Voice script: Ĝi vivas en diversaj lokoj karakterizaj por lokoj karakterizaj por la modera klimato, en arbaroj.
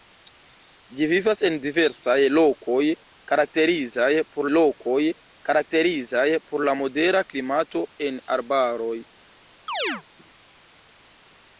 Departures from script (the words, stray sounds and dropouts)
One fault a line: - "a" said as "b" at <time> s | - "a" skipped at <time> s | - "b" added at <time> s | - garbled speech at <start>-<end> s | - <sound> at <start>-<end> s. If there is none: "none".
- chirp at 9.7-10.0 s